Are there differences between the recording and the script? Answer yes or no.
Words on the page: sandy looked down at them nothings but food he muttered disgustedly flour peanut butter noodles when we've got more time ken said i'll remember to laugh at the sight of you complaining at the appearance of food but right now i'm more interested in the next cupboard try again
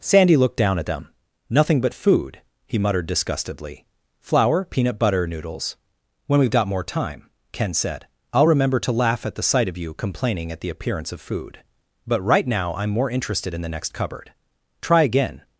yes